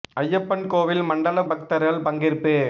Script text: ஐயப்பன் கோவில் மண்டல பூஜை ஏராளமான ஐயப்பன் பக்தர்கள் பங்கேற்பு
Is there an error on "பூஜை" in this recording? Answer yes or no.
yes